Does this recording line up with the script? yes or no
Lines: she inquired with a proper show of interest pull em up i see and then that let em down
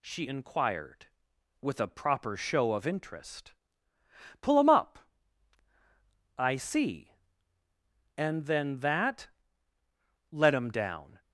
yes